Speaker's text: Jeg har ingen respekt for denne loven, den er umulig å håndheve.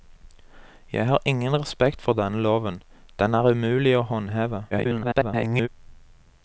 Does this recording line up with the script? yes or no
no